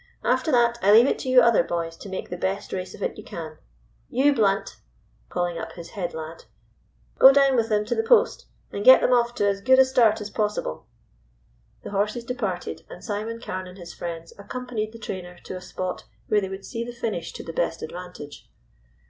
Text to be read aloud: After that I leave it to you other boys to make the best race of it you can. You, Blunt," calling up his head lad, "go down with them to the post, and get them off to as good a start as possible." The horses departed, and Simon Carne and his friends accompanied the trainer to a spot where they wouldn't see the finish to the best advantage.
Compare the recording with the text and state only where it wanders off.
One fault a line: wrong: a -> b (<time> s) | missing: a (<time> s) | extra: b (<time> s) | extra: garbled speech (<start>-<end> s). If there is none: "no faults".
wrong: wouldn't -> would (16.5 s)